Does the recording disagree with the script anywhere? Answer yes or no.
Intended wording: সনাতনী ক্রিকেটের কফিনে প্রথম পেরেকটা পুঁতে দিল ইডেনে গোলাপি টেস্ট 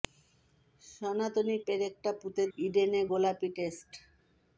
yes